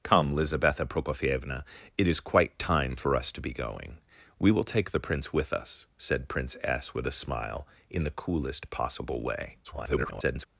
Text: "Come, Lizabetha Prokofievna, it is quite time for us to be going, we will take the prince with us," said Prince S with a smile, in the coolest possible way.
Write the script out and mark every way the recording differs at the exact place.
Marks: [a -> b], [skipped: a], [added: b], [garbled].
"Come, Lizabetha Prokofievna, it is quite time for us to be going, we will take the prince with us," said Prince S with a smile, in the coolest possible way. [garbled]